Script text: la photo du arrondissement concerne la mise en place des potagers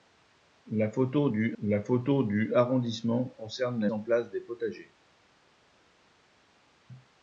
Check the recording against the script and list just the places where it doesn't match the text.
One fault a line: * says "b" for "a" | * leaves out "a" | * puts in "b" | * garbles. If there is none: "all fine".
* puts in "la photo du"
* leaves out "mise"